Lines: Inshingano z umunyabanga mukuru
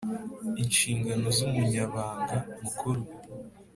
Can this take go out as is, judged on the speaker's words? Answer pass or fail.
pass